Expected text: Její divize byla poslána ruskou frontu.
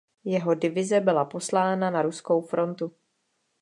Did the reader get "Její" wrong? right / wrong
wrong